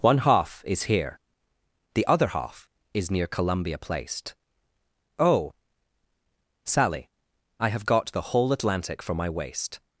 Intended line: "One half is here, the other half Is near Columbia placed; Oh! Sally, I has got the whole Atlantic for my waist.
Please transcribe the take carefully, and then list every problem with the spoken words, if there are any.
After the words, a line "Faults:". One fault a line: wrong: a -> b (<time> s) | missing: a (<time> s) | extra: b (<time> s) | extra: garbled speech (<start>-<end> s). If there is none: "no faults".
"One half is here, the other half Is near Columbia placed; Oh! Sally, I have got the whole Atlantic for my waist.
Faults:
wrong: has -> have (7.7 s)